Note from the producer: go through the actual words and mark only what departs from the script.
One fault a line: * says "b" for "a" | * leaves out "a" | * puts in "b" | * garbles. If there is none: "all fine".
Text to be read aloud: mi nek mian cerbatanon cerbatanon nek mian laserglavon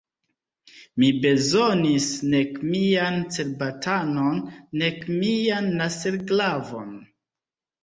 * puts in "bezonis"
* leaves out "cerbatanon"